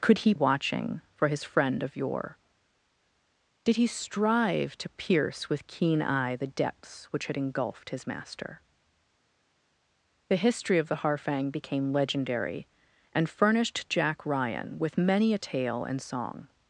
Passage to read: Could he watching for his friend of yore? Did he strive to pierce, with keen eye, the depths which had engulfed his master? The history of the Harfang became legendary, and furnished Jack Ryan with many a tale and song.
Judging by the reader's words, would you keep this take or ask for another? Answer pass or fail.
pass